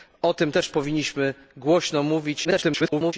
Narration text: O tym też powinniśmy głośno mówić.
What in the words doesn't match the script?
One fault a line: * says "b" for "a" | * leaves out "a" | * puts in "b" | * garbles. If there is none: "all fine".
* garbles